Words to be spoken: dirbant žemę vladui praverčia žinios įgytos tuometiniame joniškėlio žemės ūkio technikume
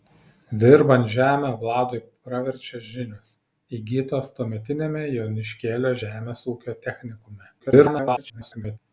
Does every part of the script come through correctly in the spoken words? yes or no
no